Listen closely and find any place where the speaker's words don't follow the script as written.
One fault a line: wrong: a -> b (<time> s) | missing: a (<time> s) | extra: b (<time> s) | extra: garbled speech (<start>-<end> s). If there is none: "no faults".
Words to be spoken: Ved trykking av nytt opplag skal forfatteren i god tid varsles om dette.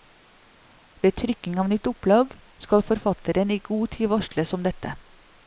no faults